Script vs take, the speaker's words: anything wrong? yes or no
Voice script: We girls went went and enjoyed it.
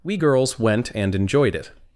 yes